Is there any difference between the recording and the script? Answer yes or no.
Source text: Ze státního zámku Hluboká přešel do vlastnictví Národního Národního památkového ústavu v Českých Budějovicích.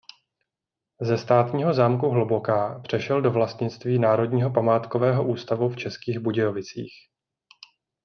yes